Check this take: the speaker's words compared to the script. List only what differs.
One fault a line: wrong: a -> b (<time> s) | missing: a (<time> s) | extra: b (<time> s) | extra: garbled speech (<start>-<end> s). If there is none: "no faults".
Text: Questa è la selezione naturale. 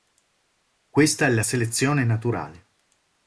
no faults